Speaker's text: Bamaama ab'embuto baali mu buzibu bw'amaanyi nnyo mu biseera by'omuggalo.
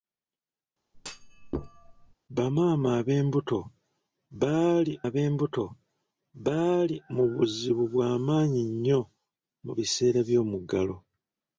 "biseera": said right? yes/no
yes